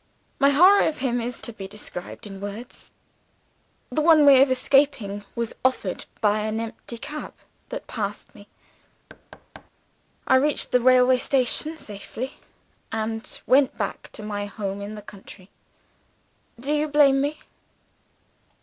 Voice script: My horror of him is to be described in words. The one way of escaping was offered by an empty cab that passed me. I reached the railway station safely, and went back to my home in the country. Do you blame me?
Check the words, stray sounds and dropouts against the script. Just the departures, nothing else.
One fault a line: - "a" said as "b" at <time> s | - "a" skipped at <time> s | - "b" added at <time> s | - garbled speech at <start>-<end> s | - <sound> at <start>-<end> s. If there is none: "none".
- thud at 9.1-9.7 s